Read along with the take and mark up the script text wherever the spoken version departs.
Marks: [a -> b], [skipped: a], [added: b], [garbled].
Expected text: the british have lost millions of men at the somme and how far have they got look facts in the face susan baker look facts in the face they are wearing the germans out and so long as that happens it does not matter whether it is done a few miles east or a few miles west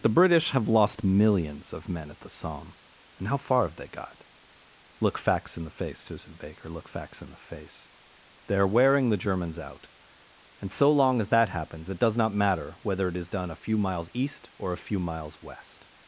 the british have lost millions of men at the somme and how far have they got look facts in the face susan baker look facts in the face they are wearing the germans out and so long as that happens it does not matter whether it is done a few miles east or a few miles west